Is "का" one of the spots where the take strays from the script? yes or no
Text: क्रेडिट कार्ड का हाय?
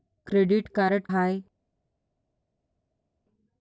yes